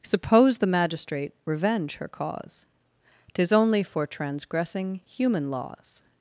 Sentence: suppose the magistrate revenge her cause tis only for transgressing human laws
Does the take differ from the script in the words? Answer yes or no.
no